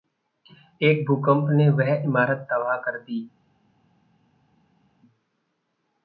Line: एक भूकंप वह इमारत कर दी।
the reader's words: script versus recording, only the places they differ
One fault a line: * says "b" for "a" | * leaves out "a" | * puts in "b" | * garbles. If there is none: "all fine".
* puts in "ने"
* puts in "तबाह"